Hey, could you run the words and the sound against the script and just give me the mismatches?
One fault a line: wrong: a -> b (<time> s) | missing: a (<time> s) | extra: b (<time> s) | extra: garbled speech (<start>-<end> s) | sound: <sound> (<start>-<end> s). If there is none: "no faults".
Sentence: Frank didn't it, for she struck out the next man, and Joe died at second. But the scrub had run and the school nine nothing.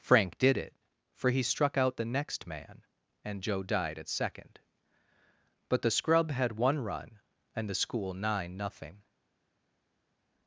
wrong: didn't -> did (0.4 s)
wrong: she -> he (1.3 s)
extra: one (6.6 s)